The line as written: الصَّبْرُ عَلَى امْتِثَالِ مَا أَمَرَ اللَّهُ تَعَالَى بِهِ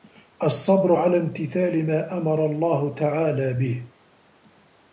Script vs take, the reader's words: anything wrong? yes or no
no